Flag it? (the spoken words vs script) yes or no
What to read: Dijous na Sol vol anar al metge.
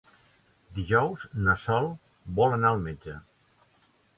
no